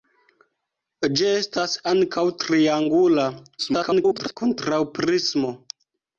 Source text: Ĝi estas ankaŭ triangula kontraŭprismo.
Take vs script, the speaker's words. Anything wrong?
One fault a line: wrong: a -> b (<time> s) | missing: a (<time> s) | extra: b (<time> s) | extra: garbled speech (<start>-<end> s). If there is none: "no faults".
extra: garbled speech (3.6-4.4 s)